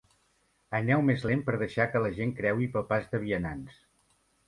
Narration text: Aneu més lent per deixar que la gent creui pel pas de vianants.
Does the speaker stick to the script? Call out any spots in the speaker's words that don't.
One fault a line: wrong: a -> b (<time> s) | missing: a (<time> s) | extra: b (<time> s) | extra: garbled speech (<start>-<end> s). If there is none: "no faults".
no faults